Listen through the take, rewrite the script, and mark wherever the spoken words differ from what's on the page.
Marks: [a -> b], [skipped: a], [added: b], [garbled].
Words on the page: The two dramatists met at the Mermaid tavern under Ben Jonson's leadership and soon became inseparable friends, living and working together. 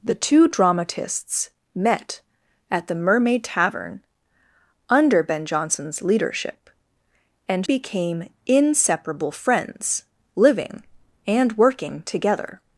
The two dramatists met at the Mermaid tavern under Ben Jonson's leadership and [skipped: soon] became inseparable friends, living and working together.